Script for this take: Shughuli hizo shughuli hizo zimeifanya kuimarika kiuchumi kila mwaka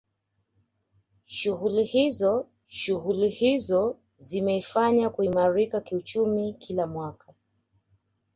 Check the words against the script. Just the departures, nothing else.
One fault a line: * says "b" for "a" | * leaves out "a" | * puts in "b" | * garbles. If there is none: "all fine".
all fine